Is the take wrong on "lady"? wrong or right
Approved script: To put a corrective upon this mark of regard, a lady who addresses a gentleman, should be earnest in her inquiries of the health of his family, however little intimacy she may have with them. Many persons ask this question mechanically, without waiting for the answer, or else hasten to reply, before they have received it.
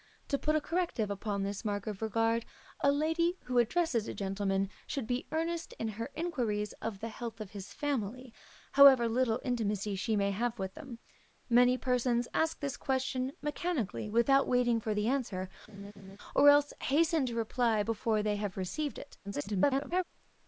right